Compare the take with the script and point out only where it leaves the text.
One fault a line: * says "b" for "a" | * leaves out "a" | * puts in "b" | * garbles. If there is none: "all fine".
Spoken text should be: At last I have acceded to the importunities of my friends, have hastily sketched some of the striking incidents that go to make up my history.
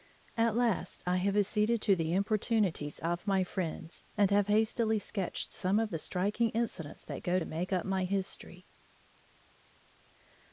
* puts in "and"